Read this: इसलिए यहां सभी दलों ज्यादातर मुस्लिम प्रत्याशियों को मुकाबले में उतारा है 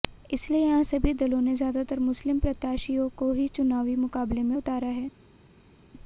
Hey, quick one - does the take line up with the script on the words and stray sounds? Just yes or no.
no